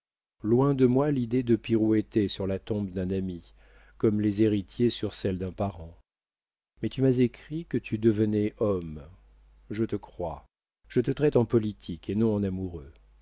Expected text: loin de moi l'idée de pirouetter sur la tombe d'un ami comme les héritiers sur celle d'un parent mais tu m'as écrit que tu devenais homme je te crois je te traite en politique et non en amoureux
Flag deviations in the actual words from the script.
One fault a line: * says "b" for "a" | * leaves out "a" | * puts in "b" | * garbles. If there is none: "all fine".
all fine